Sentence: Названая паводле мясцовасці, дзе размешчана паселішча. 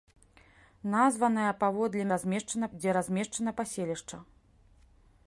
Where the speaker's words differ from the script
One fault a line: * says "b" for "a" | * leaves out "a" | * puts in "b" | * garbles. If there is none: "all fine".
* says "размешчана" for "мясцовасці"